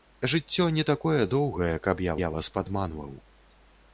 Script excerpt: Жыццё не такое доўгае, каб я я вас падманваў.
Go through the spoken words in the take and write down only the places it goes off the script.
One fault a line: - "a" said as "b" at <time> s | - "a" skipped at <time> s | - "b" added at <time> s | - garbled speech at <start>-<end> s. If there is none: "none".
none